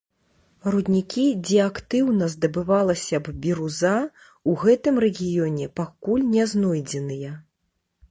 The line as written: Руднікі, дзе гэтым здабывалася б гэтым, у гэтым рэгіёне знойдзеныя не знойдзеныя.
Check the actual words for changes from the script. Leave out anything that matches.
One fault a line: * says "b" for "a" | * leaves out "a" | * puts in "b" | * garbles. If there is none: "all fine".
* says "актыўна" for "гэтым"
* says "біруза" for "гэтым"
* says "пакуль" for "знойдзеныя"